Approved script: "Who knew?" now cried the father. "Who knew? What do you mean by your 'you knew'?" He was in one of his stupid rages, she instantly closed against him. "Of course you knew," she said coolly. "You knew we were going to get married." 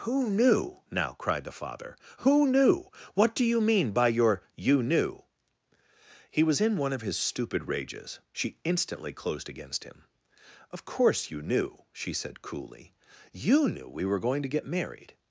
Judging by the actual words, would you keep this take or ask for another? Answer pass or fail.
pass